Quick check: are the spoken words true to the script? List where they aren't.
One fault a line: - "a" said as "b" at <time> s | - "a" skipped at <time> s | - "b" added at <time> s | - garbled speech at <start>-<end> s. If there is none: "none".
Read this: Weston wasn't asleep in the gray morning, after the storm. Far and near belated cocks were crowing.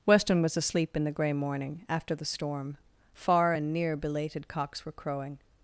- "wasn't" said as "was" at 0.4 s